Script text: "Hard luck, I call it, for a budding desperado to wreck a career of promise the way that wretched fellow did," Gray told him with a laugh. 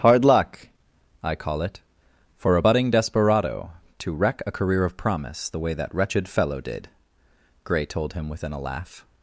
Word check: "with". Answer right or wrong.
wrong